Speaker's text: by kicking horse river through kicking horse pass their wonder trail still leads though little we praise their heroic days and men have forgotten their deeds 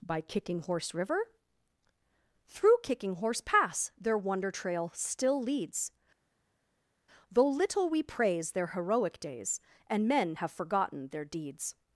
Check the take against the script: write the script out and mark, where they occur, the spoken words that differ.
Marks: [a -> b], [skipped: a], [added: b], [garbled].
by kicking horse river through kicking horse pass their wonder trail still leads though little we praise their heroic days and men have forgotten their deeds